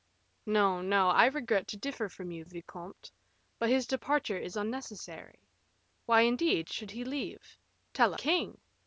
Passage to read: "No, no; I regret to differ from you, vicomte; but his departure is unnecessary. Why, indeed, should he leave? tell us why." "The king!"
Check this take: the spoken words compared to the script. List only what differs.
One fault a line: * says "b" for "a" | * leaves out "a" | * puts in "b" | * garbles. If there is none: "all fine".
* leaves out "us why The"